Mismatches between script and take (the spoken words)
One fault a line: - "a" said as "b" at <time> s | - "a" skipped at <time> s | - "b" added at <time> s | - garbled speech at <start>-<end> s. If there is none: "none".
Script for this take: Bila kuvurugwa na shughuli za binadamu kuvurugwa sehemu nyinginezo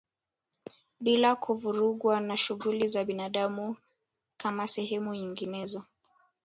- "kuvurugwa" said as "kama" at 4.4 s